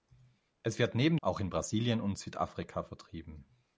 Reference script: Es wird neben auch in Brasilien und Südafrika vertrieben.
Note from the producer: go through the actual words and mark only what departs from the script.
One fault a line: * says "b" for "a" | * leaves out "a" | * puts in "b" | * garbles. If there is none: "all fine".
all fine